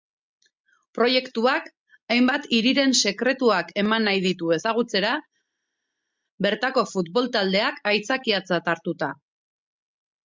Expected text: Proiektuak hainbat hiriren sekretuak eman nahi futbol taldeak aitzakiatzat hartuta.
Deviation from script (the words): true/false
true